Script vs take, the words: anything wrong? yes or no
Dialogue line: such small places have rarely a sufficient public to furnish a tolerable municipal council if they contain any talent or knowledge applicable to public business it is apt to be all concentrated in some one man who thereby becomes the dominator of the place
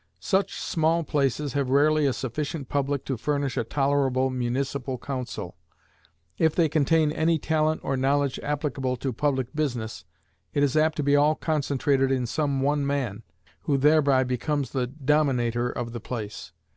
no